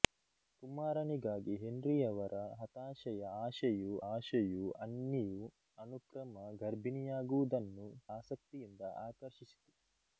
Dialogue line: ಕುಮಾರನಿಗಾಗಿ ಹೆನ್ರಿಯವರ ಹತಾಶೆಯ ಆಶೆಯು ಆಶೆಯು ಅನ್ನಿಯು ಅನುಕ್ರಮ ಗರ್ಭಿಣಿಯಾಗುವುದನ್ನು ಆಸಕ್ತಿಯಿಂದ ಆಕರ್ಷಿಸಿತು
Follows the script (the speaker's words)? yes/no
yes